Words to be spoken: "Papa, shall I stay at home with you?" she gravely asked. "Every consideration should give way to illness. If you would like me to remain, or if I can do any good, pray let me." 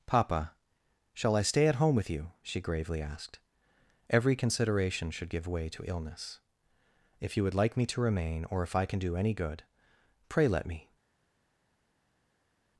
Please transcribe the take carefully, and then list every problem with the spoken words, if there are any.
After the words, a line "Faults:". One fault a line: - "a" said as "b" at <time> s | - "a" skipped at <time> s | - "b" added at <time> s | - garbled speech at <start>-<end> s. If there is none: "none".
"Papa, shall I stay at home with you?" she gravely asked. "Every consideration should give way to illness. If you would like me to remain, or if I can do any good, pray let me."
Faults:
none